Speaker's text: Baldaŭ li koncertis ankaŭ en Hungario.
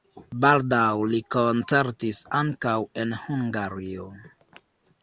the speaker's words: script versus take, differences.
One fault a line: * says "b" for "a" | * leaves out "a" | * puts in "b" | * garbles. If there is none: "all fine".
all fine